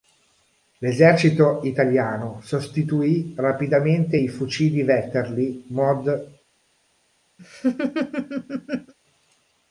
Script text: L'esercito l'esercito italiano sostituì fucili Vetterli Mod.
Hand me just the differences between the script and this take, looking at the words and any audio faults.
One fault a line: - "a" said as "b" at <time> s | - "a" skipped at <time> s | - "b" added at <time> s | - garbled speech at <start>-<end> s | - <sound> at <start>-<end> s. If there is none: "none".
- "l'esercito" skipped at 1.6 s
- "rapidamente i" added at 3.4 s
- laugh at 7.4-8.9 s